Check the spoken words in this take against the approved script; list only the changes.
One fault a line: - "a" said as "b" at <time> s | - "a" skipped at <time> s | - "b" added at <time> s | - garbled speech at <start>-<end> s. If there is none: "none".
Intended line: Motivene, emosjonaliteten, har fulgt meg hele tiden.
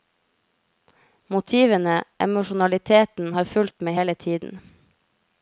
none